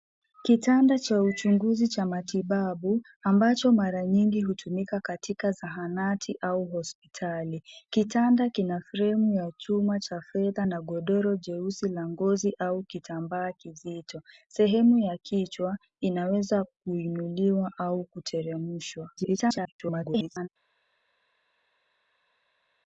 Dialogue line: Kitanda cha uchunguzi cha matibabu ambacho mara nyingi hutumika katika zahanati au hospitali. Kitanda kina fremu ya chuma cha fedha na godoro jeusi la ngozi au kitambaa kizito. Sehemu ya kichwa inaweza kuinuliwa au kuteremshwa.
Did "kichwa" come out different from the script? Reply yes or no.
no